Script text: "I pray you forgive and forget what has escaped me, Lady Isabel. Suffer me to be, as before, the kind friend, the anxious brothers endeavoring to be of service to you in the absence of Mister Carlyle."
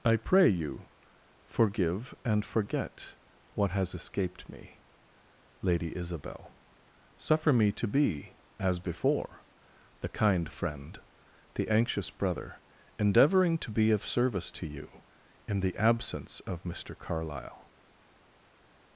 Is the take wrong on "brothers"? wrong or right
wrong